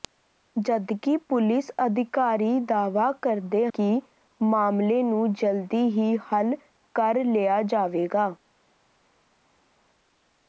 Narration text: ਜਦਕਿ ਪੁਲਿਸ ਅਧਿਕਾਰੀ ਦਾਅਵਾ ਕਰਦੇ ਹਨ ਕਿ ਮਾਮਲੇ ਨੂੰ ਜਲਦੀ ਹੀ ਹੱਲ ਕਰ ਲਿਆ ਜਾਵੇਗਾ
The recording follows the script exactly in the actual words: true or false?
false